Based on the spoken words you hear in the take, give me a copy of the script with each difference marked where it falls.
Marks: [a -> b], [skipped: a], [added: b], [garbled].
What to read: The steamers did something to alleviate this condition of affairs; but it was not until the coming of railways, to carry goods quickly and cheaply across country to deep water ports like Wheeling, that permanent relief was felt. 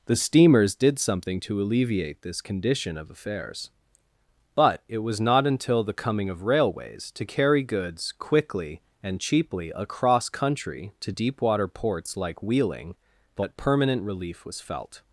The steamers did something to alleviate this condition of affairs; but it was not until the coming of railways, to carry goods quickly and cheaply across country to deep water ports like Wheeling, that permanent relief was felt.